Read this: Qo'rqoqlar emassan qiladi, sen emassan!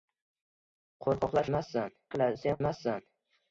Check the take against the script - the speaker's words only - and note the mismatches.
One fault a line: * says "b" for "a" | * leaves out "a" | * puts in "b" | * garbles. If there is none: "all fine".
all fine